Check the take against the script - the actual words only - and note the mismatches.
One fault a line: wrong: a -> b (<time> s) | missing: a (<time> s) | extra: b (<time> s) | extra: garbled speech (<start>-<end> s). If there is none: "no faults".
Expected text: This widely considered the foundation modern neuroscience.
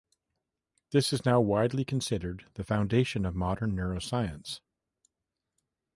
extra: is now (1.1 s)
extra: of (3.3 s)